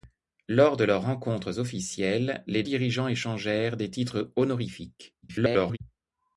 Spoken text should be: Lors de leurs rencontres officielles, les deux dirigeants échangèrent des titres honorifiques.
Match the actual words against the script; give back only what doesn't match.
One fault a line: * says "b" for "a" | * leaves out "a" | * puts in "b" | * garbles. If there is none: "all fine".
* leaves out "deux"
* garbles